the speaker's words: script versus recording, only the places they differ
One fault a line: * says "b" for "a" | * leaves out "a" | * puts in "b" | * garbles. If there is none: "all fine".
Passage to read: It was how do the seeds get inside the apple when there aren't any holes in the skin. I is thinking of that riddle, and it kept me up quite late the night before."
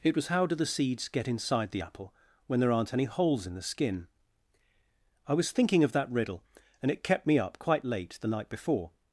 * says "was" for "is"